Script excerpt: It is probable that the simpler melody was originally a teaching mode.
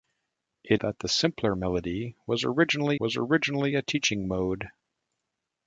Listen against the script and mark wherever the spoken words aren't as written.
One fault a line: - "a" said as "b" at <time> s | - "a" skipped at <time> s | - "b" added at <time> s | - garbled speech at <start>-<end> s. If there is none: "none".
- "is probable" skipped at 0.8 s
- "was originally" added at 3.0 s